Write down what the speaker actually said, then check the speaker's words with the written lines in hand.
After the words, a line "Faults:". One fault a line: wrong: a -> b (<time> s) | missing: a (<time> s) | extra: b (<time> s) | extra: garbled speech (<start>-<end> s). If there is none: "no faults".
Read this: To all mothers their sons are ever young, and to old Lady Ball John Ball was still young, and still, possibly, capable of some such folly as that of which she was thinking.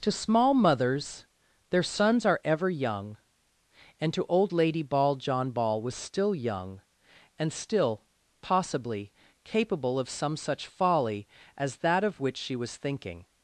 To small mothers their sons are ever young, and to old Lady Ball John Ball was still young, and still, possibly, capable of some such folly as that of which she was thinking.
Faults:
wrong: all -> small (0.1 s)